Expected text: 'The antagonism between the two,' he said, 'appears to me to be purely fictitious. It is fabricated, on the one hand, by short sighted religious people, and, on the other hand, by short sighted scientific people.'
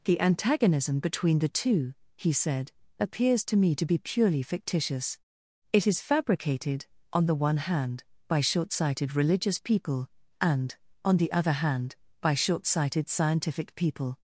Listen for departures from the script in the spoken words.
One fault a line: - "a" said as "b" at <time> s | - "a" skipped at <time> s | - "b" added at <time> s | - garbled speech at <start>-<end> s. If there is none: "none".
none